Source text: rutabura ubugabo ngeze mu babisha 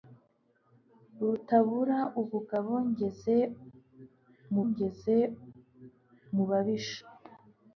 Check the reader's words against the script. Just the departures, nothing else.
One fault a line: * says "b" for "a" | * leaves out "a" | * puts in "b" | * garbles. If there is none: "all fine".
* puts in "ngeze mu"